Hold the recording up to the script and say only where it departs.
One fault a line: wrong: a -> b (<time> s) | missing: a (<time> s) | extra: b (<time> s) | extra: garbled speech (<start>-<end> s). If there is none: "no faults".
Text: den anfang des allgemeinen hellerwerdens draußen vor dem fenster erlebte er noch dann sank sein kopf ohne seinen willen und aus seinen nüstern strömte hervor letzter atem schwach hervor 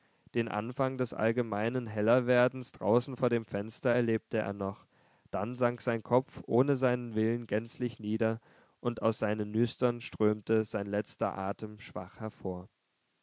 extra: gänzlich nieder (7.5 s)
wrong: hervor -> sein (10.6 s)